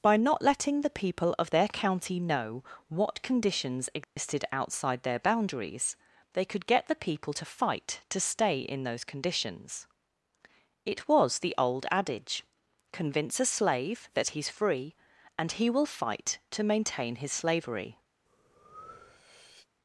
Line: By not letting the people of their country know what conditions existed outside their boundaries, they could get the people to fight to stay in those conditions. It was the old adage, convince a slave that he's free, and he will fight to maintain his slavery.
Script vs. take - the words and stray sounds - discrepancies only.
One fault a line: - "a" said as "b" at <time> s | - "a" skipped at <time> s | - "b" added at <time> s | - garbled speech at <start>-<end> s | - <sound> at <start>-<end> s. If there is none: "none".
- "country" said as "county" at 1.7 s
- dropout at 4.0-4.2 s
- breath at 18.3-19.7 s